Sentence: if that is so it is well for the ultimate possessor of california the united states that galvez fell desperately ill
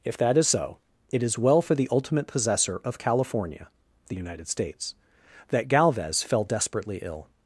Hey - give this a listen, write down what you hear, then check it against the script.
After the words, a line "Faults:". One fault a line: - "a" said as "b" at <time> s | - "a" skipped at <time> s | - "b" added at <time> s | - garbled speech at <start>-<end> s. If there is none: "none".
if that is so it is well for the ultimate possessor of california the united states that galvez fell desperately ill
Faults:
none